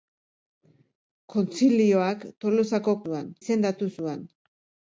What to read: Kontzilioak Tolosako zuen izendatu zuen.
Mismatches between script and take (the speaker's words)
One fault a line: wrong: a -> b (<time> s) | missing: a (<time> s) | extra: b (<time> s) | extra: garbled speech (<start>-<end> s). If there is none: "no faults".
no faults